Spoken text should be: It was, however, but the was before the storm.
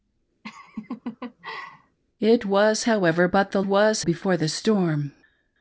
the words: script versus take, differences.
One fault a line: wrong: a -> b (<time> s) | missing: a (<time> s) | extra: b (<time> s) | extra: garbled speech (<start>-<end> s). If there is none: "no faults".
no faults